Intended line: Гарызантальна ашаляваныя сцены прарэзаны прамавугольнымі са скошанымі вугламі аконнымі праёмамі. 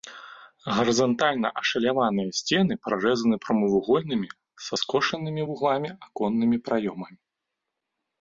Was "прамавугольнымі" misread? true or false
false